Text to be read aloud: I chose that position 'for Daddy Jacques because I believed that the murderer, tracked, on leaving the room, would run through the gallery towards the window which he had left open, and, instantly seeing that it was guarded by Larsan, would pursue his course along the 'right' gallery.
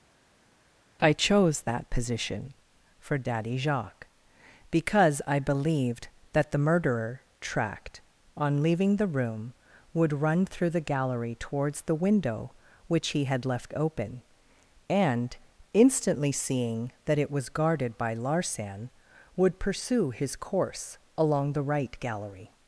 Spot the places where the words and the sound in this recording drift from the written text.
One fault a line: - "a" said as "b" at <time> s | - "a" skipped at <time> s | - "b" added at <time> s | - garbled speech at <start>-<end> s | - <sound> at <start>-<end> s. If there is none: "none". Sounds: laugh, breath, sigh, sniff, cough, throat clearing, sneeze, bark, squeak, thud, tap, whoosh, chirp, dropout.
none